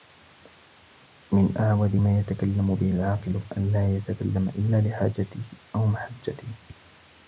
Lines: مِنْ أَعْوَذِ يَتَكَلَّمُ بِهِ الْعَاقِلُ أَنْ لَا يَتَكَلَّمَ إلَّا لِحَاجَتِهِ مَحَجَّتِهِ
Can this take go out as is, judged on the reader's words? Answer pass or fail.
fail